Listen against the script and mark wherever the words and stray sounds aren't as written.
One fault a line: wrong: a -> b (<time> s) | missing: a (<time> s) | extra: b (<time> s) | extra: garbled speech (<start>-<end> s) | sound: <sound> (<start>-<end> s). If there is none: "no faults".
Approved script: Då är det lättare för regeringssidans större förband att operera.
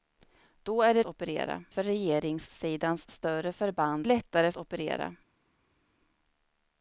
wrong: lättare -> operera (1.0 s)
wrong: att -> lättare (4.0 s)